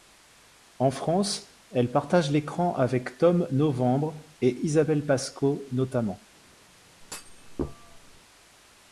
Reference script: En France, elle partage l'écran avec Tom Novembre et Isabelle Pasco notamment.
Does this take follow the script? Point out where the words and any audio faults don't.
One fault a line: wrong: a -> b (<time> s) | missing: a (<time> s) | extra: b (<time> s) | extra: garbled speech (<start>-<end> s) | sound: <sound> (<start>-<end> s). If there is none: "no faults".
sound: thud (7.0-8.2 s)